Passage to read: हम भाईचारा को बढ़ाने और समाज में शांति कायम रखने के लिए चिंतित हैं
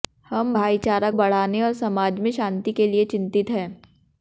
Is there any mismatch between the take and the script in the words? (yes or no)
yes